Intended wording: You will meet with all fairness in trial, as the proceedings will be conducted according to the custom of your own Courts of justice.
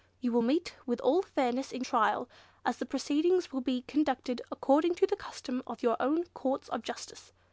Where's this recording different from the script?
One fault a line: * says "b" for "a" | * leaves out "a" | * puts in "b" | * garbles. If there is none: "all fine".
all fine